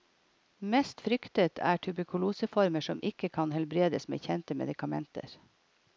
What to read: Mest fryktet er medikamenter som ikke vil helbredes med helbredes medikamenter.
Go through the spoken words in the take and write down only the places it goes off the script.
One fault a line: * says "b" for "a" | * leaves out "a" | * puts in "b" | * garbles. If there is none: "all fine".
* says "tuberkuloseformer" for "medikamenter"
* says "kan" for "vil"
* says "kjente" for "helbredes"